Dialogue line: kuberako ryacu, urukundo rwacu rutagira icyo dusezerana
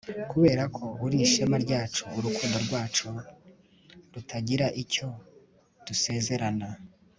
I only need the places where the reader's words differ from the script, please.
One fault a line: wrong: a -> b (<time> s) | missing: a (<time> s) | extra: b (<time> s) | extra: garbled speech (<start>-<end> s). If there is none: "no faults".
extra: uri ishema (1.1 s)